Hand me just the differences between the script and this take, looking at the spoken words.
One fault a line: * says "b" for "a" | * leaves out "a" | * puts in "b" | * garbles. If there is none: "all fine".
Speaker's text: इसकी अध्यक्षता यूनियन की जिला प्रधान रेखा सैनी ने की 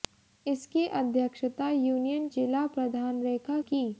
* leaves out "की"
* leaves out "सैनी ने"